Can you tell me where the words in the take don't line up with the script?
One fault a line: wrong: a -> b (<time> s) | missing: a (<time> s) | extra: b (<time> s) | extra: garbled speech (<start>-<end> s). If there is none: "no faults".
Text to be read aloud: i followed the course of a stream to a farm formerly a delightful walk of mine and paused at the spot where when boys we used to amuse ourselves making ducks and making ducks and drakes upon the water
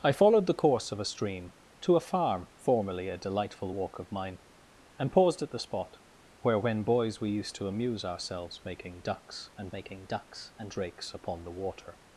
no faults